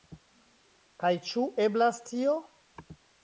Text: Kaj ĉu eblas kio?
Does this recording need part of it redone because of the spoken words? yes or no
yes